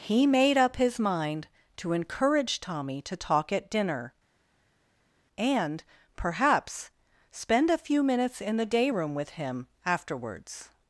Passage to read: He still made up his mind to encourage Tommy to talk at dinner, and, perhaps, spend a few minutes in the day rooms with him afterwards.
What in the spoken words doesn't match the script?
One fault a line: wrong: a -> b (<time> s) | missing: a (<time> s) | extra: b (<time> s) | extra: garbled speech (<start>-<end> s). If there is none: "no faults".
missing: still (0.2 s)
wrong: rooms -> room (8.9 s)